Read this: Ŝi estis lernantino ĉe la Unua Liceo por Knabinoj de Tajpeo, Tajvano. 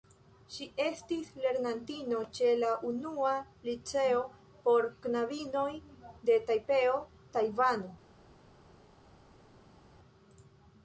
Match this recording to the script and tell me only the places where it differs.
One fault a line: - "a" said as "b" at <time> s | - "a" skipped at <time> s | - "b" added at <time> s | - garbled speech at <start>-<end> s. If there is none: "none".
none